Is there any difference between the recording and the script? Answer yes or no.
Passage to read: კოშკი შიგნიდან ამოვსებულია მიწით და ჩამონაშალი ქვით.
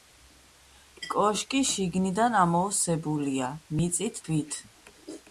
yes